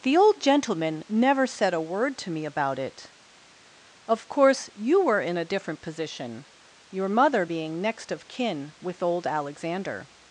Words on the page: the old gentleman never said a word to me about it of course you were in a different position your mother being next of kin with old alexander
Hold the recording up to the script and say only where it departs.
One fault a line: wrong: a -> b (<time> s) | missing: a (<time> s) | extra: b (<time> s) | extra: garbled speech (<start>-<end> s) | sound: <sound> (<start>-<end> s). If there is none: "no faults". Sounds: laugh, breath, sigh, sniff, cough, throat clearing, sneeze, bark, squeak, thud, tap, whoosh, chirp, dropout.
no faults